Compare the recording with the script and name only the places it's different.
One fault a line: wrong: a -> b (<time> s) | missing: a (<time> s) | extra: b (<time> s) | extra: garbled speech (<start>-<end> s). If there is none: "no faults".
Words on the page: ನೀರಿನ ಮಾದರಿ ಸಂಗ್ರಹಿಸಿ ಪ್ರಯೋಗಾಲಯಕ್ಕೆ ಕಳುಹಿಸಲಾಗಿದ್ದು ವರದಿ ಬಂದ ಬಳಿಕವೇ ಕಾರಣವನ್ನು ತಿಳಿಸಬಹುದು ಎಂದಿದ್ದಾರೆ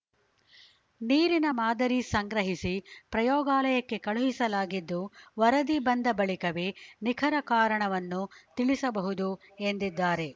extra: ನಿಖರ (7.0 s)